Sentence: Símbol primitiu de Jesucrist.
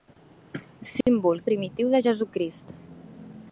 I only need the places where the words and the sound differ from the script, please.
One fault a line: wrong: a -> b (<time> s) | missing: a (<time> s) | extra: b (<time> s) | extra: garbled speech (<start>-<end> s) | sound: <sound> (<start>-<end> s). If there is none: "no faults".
sound: dropout (1.0-1.1 s)